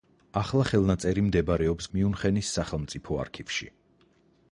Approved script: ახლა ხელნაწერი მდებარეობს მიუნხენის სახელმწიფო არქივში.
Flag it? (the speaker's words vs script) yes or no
no